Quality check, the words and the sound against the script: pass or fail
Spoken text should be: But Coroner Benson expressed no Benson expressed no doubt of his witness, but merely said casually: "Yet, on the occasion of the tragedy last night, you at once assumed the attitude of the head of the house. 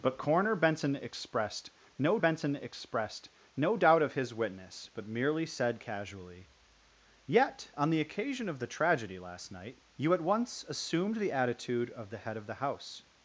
pass